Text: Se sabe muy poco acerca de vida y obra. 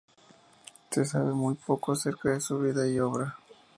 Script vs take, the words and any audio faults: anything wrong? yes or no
yes